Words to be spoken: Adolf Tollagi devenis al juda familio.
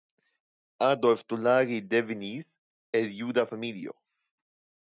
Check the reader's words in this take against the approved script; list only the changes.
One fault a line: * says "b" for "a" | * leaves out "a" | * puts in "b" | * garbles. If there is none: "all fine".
* says "el" for "al"